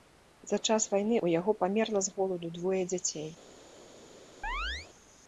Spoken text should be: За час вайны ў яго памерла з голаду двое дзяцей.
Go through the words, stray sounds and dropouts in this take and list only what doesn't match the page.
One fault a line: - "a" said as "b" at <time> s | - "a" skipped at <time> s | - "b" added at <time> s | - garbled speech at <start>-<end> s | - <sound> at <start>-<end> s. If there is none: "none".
- chirp at 4.4-4.9 s